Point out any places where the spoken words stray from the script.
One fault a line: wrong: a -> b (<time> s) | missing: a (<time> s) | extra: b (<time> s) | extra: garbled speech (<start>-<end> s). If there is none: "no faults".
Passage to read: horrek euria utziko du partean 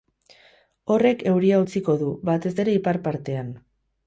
extra: batez ere ipar (2.3 s)